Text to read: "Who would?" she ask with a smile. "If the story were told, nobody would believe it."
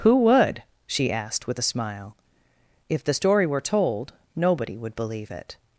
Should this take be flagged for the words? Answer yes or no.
yes